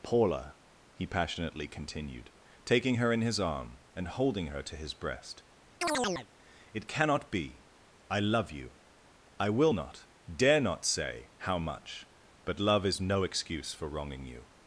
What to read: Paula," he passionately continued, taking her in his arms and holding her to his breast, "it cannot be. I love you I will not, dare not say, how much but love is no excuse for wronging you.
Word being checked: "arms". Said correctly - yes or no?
no